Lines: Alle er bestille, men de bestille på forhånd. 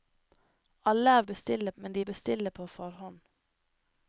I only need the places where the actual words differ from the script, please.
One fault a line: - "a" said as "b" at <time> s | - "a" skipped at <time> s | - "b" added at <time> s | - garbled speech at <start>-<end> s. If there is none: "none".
none